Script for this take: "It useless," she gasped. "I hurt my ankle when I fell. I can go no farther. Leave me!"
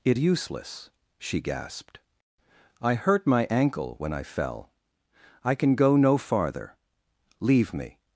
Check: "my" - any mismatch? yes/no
no